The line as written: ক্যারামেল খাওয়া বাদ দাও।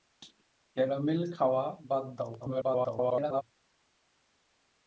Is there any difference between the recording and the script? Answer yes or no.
yes